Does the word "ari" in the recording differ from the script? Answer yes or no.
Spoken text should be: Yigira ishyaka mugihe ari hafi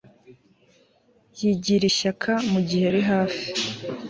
no